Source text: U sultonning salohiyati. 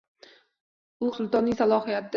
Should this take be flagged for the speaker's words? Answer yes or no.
no